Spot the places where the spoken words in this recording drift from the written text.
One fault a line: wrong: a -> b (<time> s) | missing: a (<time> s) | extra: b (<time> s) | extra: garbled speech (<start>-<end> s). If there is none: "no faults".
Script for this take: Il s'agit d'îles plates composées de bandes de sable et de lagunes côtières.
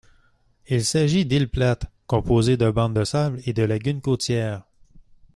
no faults